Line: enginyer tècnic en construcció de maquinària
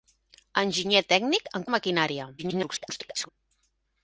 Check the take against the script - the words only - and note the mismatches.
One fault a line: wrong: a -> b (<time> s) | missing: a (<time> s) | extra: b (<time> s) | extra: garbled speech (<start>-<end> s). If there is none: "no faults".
missing: construcció (1.7 s)
extra: garbled speech (2.4-3.3 s)